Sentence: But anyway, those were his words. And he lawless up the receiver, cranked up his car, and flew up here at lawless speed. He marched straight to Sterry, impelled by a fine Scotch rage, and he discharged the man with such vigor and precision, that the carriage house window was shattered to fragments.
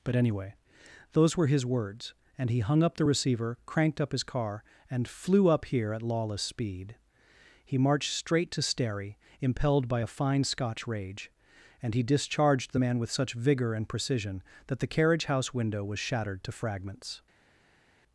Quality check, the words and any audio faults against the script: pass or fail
fail